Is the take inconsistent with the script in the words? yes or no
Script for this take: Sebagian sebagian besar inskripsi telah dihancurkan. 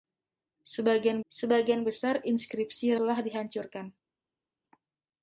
no